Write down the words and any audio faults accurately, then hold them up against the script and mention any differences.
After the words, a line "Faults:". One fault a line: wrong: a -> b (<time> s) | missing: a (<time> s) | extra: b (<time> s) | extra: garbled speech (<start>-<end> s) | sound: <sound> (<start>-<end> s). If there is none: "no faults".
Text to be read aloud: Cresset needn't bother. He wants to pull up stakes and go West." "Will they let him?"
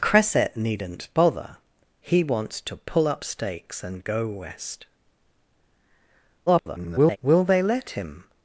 Cresset needn't bother. He wants to pull up stakes and go West." [garbled] "Will they let him?"
Faults:
extra: garbled speech (6.5-7.2 s)